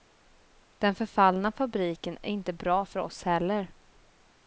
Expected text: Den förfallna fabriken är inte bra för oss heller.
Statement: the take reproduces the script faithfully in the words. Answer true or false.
true